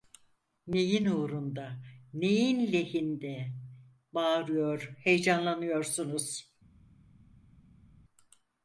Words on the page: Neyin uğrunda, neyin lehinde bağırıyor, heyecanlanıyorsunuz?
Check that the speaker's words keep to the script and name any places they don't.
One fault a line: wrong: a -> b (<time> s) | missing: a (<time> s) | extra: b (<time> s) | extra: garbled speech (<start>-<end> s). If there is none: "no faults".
no faults